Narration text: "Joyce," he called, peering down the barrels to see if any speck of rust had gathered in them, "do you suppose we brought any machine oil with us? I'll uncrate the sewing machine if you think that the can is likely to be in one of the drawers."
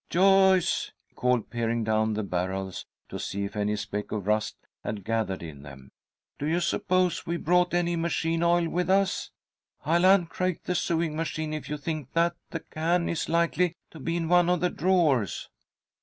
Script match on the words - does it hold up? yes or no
no